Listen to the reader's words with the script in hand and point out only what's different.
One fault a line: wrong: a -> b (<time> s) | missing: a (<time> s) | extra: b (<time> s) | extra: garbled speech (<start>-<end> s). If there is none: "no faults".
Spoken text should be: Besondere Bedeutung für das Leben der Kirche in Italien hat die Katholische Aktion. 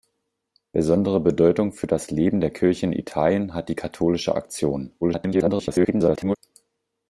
extra: garbled speech (5.0-6.4 s)